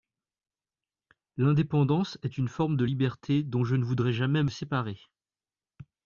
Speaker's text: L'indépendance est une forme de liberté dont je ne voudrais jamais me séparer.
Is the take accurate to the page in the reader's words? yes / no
no